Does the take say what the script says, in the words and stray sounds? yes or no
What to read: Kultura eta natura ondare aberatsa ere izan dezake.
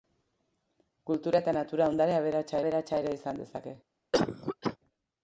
no